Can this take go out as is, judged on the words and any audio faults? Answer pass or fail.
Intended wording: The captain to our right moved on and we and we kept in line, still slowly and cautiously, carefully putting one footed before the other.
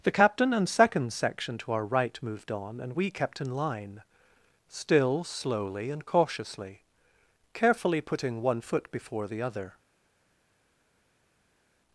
fail